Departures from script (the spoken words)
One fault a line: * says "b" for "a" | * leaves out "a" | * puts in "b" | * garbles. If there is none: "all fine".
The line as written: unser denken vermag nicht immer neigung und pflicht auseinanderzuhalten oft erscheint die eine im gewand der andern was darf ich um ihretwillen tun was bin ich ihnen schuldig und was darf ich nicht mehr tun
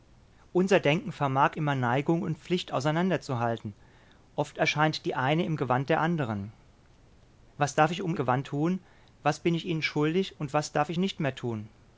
* leaves out "nicht"
* says "gewand" for "ihretwillen"